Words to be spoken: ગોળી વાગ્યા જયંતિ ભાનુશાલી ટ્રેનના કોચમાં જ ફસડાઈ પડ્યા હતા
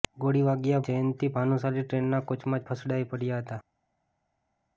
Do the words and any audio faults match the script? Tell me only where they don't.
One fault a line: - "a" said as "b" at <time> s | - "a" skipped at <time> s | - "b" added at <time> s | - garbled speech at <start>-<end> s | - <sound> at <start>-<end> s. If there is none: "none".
none